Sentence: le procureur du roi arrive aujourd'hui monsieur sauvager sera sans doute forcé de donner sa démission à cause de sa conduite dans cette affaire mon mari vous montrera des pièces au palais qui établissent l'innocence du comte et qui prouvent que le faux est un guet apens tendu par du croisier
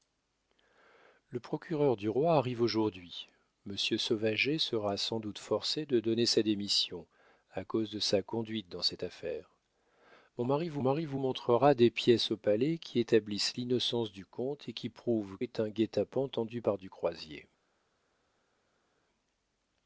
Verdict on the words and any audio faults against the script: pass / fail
fail